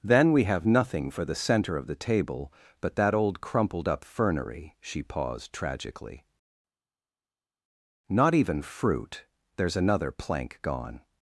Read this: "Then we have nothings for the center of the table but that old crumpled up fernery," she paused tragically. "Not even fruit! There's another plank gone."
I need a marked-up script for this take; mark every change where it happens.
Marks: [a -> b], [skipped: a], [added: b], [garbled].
"Then we have [nothings -> nothing] for the center of the table but that old crumpled up fernery," she paused tragically. "Not even fruit! There's another plank gone."